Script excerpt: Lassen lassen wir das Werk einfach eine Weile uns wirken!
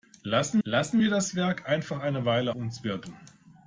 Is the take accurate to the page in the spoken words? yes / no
yes